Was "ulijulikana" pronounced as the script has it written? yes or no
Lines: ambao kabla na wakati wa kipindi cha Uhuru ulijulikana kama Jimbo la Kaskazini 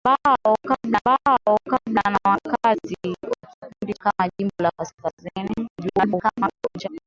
no